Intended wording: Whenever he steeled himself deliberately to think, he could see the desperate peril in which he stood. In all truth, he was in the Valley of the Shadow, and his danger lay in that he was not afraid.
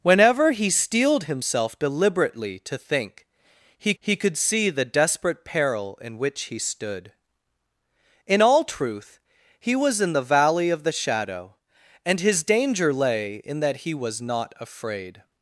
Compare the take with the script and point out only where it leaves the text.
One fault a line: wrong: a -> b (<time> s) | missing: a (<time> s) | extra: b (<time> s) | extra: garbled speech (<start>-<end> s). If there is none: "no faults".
extra: he (4.0 s)